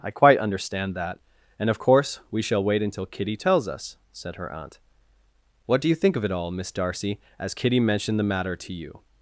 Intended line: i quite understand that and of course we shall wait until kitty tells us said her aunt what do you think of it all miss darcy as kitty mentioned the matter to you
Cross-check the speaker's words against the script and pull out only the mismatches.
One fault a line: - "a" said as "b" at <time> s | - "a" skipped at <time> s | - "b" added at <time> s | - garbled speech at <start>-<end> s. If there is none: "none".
none